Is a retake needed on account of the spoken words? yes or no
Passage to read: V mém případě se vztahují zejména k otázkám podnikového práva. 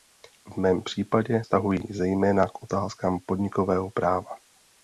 yes